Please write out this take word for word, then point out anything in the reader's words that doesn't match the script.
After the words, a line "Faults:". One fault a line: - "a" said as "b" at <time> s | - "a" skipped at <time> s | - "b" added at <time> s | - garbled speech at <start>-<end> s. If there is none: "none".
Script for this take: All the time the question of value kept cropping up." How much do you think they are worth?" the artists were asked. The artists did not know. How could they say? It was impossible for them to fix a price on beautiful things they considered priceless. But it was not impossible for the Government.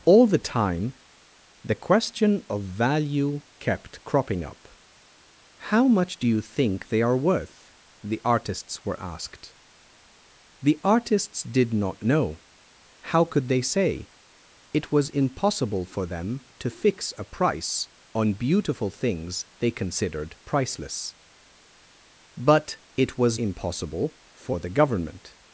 All the time the question of value kept cropping up." How much do you think they are worth?" the artists were asked. The artists did not know. How could they say? It was impossible for them to fix a price on beautiful things they considered priceless. But it was impossible for the Government.
Faults:
- "not" skipped at 23.4 s